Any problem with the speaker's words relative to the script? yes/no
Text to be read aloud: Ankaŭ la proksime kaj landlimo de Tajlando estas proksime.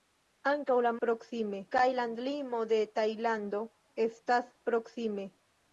no